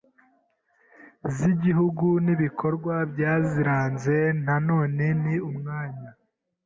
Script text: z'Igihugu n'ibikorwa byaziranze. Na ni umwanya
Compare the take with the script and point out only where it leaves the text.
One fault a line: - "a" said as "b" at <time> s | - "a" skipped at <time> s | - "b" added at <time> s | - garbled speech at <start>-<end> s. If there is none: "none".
- "none" added at 4.7 s